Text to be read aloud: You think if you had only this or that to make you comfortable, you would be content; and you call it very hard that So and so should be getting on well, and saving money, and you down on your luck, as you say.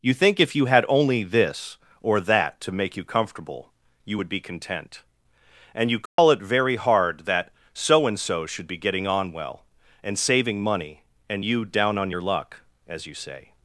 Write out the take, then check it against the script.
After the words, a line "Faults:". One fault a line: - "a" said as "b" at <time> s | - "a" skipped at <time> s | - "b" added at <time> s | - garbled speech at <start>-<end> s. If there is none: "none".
You think if you had only this or that to make you comfortable, you would be content; and you call it very hard that So and so should be getting on well, and saving money, and you down on your luck, as you say.
Faults:
none